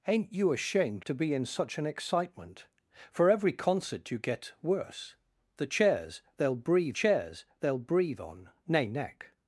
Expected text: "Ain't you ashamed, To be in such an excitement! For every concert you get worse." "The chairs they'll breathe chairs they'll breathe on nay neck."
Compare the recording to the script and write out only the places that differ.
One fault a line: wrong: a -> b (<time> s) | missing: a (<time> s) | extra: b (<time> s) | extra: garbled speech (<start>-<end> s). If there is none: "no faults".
no faults